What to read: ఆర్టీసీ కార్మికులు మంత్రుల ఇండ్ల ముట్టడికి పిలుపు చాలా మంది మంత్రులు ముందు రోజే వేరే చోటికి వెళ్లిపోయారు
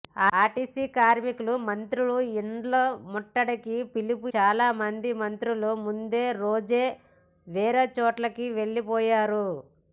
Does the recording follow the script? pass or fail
pass